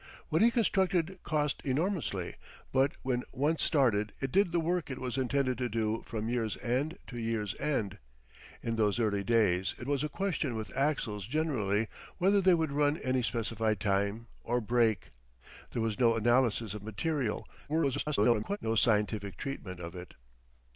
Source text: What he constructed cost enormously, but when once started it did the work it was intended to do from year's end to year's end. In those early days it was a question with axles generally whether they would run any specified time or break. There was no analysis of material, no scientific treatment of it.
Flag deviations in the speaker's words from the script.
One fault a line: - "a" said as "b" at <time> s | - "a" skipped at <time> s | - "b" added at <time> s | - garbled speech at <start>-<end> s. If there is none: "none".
- garbled speech at 17.7-18.6 s